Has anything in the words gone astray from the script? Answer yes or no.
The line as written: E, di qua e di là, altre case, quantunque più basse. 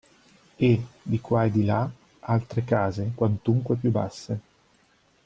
no